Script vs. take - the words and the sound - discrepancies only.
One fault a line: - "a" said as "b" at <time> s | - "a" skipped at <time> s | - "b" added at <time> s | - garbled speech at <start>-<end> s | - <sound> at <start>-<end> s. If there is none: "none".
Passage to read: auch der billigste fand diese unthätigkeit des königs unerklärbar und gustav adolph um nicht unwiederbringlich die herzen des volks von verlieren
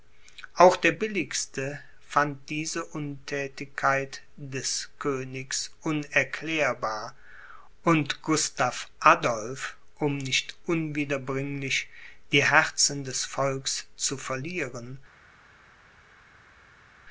- "von" said as "zu" at 13.9 s